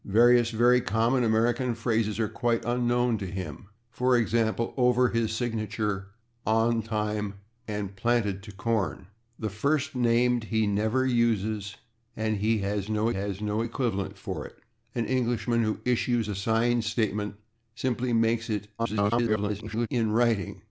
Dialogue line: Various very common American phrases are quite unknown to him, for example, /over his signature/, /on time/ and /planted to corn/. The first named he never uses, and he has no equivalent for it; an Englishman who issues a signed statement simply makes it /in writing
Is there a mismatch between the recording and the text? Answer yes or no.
yes